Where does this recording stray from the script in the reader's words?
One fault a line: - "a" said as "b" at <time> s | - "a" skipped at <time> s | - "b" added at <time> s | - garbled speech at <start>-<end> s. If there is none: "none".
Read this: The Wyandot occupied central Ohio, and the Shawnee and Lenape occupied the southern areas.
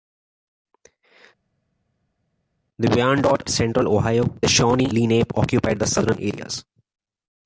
- "occupied" skipped at 3.4 s
- "and" skipped at 4.4 s
- "and" skipped at 4.9 s